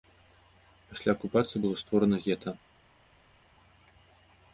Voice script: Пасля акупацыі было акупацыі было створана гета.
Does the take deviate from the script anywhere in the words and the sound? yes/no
yes